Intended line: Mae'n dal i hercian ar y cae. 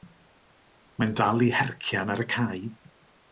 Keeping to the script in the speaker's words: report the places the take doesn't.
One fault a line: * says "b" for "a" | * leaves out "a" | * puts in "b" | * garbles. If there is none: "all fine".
all fine